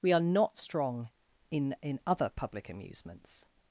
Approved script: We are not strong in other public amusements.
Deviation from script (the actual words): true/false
true